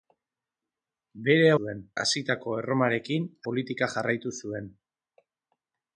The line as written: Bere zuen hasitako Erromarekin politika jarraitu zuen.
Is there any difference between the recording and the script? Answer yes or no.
no